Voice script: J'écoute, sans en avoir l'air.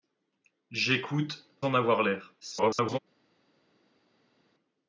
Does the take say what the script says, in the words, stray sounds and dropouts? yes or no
no